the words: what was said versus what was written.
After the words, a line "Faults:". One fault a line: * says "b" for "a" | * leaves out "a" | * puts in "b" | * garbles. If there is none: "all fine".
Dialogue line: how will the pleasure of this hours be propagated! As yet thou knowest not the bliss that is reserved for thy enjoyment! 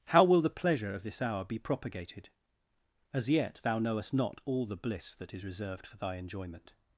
how will the pleasure of this hour be propagated! As yet thou knowest not all the bliss that is reserved for thy enjoyment!
Faults:
* says "hour" for "hours"
* puts in "all"